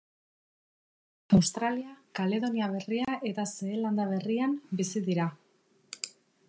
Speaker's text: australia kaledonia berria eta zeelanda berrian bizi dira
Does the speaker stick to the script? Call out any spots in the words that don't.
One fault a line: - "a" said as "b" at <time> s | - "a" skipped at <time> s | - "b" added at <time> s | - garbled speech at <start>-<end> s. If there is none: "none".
none